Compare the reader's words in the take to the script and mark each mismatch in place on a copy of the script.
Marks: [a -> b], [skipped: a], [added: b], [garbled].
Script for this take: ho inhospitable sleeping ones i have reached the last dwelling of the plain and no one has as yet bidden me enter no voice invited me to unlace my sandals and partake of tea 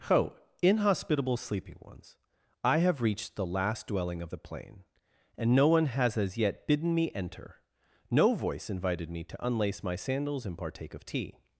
ho inhospitable sleeping ones i have reached the last dwelling of the plain and no one has as yet bidden me enter no voice invited me to unlace my sandals and partake of tea